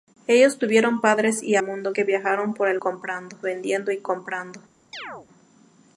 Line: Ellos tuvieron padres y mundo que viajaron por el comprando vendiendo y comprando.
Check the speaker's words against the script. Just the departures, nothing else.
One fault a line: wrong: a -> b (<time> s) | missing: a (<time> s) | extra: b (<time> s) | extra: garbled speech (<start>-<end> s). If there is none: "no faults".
no faults